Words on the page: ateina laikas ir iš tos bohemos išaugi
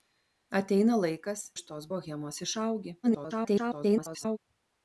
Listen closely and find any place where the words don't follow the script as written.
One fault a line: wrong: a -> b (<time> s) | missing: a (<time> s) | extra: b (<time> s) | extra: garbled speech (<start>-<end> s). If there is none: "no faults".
missing: ir (1.4 s)
extra: garbled speech (3.0-4.4 s)